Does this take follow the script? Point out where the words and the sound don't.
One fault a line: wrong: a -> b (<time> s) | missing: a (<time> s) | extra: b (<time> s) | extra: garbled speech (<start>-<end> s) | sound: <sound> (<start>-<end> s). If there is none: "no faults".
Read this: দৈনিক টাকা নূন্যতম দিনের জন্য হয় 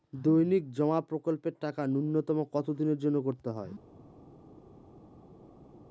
extra: জমা প্রকল্পের (0.7 s)
extra: কত (2.5 s)
extra: করতে (3.2 s)